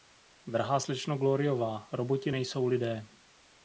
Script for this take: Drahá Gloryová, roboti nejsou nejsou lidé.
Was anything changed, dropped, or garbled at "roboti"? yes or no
no